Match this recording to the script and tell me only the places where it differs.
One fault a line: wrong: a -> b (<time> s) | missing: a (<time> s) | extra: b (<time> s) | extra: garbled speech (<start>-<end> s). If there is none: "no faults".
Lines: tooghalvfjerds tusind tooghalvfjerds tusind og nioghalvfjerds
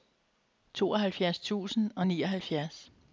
missing: tooghalvfjerds tusind (1.9 s)